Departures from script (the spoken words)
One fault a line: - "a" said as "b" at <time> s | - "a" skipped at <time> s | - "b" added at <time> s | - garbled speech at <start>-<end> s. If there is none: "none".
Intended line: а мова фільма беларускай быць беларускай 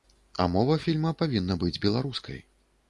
- "беларускай" said as "павінна" at 1.2 s